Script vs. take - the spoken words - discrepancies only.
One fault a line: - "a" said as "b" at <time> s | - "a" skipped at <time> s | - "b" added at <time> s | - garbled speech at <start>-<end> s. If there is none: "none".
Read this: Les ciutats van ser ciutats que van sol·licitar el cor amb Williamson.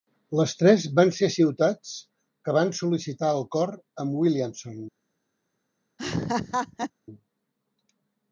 - "ciutats" said as "tres" at 0.6 s